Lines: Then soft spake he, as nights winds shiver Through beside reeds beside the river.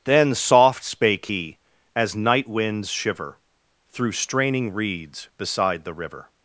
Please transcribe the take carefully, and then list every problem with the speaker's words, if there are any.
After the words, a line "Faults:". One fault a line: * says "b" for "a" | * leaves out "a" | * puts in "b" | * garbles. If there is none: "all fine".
Then soft spake he, as night winds shiver Through straining reeds beside the river.
Faults:
* says "night" for "nights"
* says "straining" for "beside"